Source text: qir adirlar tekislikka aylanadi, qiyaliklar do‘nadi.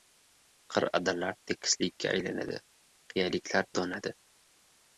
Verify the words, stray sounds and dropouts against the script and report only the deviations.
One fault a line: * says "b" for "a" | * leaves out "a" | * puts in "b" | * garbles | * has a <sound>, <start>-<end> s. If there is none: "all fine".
all fine